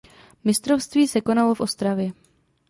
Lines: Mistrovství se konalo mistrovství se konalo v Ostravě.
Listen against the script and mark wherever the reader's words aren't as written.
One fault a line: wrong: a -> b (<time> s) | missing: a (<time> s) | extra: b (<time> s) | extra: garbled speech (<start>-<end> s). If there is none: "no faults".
missing: mistrovství se konalo (1.5 s)